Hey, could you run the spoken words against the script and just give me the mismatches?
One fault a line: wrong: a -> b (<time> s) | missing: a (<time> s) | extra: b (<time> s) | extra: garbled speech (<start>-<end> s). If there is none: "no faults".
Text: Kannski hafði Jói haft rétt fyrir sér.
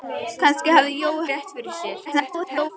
missing: haft (1.3 s)
extra: garbled speech (2.0-2.7 s)